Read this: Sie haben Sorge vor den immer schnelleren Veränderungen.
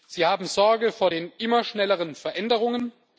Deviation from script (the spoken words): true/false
false